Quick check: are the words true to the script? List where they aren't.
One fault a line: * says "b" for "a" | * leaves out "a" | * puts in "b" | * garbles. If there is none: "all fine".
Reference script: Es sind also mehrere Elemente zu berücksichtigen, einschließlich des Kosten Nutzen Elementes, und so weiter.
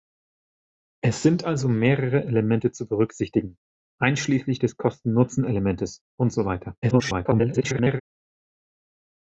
* garbles